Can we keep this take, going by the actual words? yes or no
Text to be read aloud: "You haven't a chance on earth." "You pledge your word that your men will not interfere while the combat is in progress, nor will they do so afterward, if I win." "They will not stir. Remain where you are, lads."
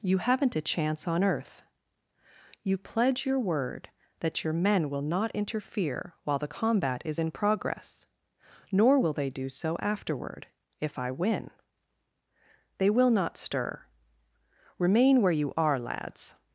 yes